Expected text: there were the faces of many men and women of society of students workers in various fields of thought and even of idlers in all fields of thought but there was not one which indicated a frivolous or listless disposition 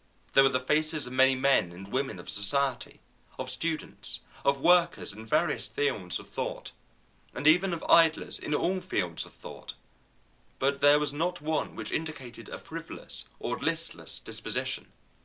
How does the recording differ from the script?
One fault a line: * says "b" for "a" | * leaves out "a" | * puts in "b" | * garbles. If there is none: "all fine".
* puts in "of"